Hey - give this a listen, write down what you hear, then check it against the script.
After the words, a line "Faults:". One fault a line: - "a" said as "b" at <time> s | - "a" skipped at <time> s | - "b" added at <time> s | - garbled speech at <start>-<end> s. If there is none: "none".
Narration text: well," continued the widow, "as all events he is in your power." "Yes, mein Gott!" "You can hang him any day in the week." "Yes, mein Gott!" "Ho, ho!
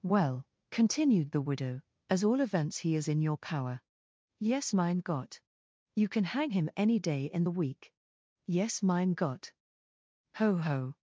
well," continued the widow, "as all events he is in your power." "Yes, mein Gott!" "You can hang him any day in the week." "Yes, mein Gott!" "Ho, ho!
Faults:
none